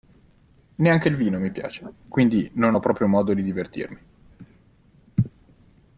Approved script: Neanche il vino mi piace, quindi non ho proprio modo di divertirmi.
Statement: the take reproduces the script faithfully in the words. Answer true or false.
true